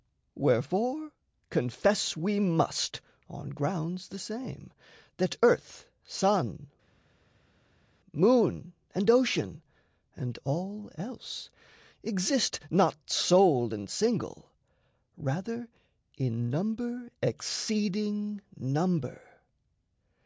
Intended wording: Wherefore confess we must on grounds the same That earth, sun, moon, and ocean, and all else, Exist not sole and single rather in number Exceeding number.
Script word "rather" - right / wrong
right